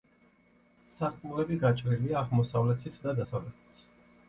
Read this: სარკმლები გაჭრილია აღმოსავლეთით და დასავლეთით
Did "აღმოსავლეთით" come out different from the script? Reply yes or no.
no